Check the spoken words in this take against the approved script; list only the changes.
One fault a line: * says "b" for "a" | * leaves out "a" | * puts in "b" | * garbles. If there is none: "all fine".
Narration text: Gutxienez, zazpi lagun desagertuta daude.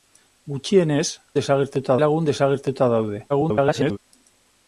* says "desagertuta" for "zazpi"
* garbles